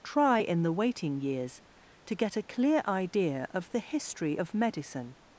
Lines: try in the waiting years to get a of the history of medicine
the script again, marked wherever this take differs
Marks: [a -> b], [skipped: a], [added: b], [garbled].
try in the waiting years to get a [added: clear idea] of the history of medicine